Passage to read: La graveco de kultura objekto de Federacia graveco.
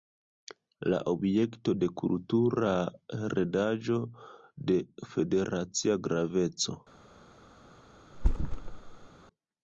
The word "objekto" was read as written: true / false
false